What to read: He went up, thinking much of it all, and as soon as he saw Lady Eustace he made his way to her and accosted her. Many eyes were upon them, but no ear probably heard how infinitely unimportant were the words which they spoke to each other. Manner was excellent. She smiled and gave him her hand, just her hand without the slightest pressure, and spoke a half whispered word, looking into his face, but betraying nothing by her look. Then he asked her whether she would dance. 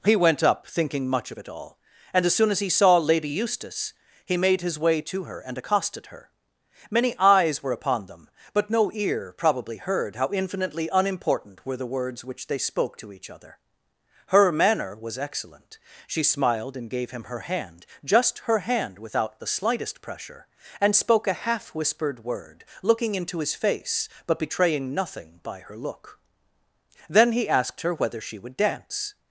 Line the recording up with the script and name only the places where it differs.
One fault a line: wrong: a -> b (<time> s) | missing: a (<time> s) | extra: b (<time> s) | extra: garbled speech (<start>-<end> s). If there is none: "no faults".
extra: Her (14.3 s)